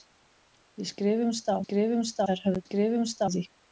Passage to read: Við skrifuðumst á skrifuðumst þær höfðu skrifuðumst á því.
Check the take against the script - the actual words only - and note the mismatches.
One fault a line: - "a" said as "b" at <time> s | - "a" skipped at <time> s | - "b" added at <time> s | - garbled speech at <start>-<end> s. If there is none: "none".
none